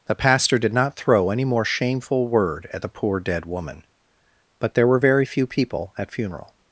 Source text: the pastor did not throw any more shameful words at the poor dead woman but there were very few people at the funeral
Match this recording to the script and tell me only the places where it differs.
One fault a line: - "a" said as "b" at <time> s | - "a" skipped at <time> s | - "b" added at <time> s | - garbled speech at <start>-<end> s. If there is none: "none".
- "words" said as "word" at 2.3 s
- "the" skipped at 6.1 s